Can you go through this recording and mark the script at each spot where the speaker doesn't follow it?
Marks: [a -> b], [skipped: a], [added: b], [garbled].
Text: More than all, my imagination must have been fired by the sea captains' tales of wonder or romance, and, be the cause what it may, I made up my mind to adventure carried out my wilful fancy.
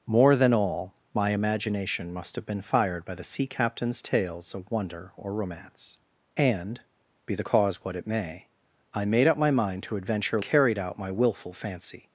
More than all, my imagination must have been fired by the sea captains' tales of wonder or romance, and, be the cause what it may, I made up my mind to adventure carried out my wilful fancy.